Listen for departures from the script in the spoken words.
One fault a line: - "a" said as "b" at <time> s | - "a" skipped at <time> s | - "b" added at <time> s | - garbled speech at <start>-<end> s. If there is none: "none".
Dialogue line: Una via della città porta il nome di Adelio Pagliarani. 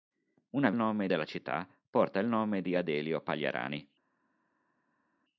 - "via" said as "nome" at 0.8 s